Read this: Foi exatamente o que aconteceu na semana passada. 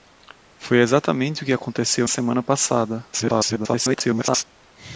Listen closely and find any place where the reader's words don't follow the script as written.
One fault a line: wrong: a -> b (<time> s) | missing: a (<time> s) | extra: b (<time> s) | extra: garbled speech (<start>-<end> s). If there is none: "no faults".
missing: na (2.1 s)
extra: garbled speech (3.1-4.4 s)